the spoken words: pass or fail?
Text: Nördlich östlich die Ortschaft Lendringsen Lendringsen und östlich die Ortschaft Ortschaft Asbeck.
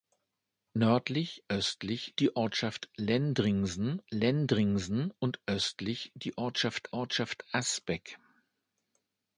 pass